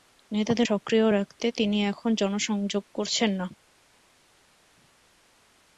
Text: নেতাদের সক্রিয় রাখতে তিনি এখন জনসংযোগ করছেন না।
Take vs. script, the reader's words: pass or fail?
pass